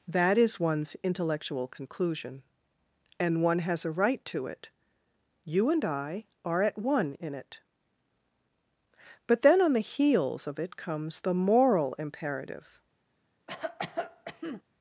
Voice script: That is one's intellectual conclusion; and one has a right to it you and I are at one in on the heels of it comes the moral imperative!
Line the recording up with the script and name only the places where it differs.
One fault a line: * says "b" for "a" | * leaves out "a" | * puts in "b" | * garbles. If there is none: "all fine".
* puts in "it But then"